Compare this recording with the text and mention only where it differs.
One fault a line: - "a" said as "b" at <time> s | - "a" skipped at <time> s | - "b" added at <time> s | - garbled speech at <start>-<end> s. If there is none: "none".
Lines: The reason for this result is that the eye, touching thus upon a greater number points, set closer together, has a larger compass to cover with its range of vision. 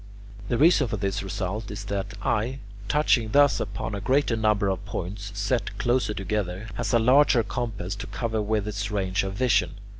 - "of" added at 4.7 s